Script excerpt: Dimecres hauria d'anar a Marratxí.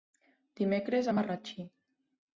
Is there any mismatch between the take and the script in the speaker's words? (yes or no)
yes